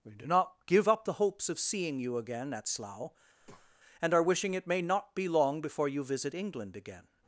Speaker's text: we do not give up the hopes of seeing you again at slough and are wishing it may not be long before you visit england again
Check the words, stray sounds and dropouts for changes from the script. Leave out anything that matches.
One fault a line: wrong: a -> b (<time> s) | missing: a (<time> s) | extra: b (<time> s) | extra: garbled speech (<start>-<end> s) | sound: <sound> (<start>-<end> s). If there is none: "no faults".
sound: breath (3.4-3.8 s)